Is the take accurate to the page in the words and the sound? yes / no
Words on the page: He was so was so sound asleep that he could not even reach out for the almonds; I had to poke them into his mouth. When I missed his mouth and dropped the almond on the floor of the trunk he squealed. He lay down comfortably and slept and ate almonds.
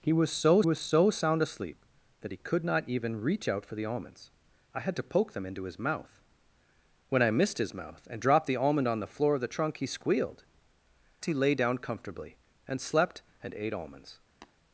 no